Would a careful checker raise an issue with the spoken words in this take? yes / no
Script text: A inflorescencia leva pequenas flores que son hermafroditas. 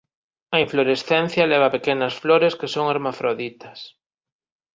no